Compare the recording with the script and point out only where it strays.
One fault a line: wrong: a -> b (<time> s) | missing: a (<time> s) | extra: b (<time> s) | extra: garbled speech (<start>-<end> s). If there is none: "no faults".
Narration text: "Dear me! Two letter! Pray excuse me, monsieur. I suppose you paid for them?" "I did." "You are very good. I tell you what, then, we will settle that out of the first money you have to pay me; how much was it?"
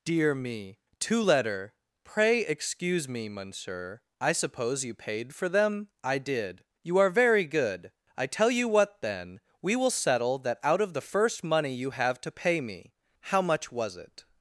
no faults